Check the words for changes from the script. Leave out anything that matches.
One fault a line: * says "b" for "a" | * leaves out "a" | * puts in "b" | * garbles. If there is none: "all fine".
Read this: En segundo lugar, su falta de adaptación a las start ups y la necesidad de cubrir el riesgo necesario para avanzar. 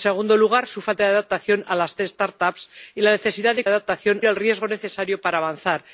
* says "adaptación" for "cubrir"